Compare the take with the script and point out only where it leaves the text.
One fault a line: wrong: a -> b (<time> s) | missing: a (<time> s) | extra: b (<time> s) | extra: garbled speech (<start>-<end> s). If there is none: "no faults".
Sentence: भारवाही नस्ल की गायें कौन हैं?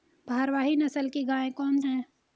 no faults